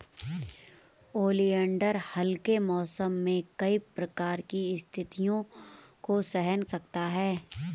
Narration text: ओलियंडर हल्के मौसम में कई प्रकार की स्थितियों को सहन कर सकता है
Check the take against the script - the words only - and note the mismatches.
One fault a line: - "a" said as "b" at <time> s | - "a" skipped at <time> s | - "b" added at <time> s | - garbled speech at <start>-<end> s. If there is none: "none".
- "कर" skipped at 6.6 s